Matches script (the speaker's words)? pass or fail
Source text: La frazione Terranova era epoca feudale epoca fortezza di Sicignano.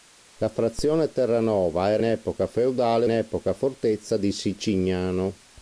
pass